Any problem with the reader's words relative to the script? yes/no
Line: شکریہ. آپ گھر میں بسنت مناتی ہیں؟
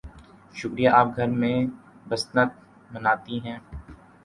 no